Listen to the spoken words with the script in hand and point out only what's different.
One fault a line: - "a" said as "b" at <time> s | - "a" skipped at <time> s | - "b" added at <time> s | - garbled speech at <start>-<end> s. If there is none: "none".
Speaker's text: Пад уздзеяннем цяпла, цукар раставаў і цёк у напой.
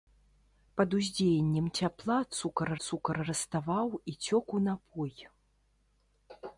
- "цукар" added at 2.8 s